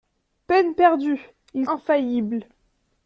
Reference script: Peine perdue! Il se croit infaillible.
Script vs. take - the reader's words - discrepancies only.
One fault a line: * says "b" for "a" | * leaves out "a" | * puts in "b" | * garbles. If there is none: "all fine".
* leaves out "se croit"